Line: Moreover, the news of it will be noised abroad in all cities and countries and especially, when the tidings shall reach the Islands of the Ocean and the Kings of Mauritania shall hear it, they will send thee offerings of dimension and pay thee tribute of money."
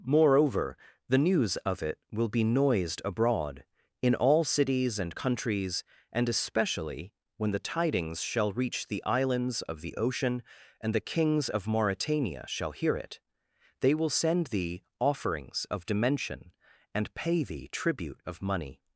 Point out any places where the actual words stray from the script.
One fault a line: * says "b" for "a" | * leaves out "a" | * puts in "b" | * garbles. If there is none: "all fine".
all fine